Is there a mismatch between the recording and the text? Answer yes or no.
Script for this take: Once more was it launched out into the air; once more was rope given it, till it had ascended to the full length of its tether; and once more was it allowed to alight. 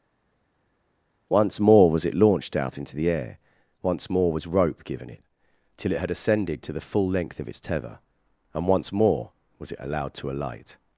no